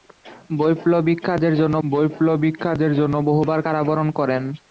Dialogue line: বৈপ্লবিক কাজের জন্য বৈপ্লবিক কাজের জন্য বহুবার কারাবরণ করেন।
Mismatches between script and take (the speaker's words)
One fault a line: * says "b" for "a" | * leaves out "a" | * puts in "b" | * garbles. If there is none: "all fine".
all fine